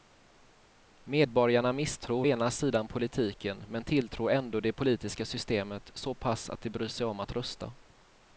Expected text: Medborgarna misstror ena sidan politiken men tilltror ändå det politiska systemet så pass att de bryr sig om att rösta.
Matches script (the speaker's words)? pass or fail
pass